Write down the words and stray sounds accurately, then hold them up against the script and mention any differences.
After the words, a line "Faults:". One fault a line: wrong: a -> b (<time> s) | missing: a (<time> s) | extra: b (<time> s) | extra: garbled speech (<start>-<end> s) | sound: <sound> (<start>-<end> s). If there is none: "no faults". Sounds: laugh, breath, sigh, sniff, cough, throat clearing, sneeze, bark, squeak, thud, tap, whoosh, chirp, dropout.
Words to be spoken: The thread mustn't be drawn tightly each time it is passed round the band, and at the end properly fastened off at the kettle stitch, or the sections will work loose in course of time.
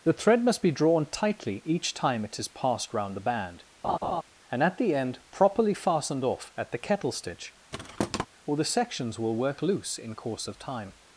The thread must be drawn tightly each time it is passed round the band, and at the end properly fastened off at the kettle stitch, or the sections will work loose in course of time.
Faults:
wrong: mustn't -> must (0.4 s)
sound: laugh (3.8-4.2 s)
sound: thud (7.7-8.3 s)